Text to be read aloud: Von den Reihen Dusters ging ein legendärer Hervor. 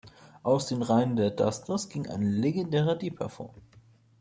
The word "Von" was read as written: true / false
false